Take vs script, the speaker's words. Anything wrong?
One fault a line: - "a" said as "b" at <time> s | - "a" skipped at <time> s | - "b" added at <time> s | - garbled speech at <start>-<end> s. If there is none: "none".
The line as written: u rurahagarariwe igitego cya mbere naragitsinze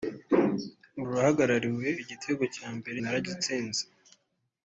none